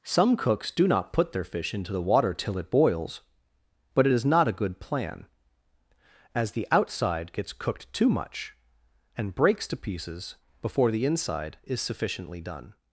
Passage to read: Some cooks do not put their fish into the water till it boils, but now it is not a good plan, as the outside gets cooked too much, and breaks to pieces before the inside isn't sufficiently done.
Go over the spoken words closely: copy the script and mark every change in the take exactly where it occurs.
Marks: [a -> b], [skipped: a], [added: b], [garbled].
Some cooks do not put their fish into the water till it boils, but [skipped: now] it is not a good plan, as the outside gets cooked too much, and breaks to pieces before the inside [isn't -> is] sufficiently done.